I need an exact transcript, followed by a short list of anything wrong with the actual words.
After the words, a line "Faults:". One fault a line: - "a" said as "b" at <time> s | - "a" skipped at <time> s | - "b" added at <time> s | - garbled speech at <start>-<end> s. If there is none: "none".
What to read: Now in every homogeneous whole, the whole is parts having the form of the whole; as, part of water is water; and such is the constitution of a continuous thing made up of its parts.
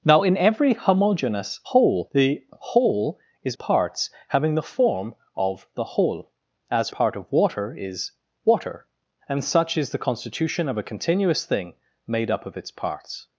Now in every homogeneous whole, the whole is parts having the form of the whole; as, part of water is water; and such is the constitution of a continuous thing made up of its parts.
Faults:
none